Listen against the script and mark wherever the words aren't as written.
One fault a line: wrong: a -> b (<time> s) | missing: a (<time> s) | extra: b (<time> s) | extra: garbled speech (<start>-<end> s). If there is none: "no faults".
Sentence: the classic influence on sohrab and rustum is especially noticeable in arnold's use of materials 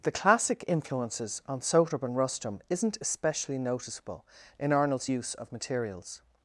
wrong: influence -> influences (0.7 s)
wrong: is -> isn't (2.7 s)